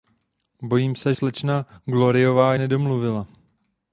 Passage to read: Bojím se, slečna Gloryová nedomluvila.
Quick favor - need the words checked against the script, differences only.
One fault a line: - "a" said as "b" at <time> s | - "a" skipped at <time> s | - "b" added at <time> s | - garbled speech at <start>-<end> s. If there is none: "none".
none